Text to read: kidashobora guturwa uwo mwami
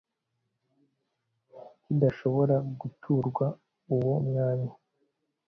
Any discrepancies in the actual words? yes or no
no